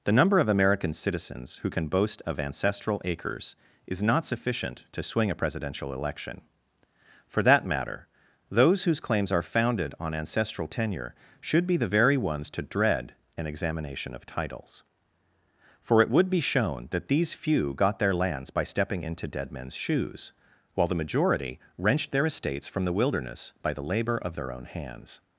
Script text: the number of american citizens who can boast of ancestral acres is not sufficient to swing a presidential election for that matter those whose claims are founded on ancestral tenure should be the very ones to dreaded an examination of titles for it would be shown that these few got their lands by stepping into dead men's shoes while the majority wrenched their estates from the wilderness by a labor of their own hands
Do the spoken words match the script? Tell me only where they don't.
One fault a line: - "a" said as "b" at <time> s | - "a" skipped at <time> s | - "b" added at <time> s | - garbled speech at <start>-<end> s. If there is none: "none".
- "dreaded" said as "dread" at 12.6 s
- "a" said as "the" at 23.7 s